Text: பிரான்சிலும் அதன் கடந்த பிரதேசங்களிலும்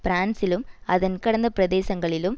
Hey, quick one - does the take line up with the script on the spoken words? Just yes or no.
yes